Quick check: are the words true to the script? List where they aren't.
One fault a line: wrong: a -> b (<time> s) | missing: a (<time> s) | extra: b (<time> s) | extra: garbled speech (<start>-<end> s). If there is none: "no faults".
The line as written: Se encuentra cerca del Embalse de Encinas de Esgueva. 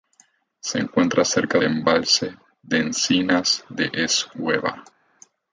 missing: del (1.6 s)